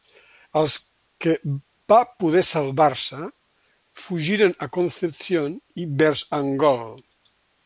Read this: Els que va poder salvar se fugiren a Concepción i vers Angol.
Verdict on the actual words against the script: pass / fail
pass